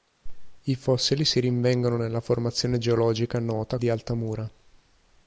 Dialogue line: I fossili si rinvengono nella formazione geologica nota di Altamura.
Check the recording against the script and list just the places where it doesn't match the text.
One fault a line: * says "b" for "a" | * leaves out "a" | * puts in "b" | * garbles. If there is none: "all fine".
all fine